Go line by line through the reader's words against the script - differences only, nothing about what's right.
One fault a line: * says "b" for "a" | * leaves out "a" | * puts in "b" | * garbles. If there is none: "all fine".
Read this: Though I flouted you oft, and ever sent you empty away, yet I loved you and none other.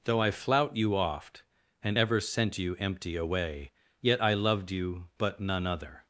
* says "flout" for "flouted"
* says "but" for "and"